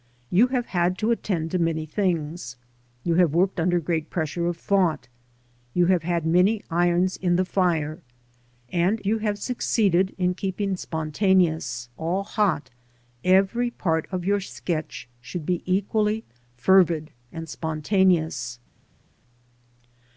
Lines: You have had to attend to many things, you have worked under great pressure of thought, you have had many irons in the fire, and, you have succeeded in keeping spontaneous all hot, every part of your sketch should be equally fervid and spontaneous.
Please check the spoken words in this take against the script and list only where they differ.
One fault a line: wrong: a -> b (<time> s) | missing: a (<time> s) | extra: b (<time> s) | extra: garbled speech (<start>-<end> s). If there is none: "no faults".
no faults